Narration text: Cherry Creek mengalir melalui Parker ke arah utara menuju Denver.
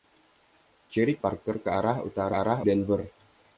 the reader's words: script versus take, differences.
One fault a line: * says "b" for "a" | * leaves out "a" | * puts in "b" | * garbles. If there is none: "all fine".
* leaves out "Creek mengalir melalui"
* says "arah" for "menuju"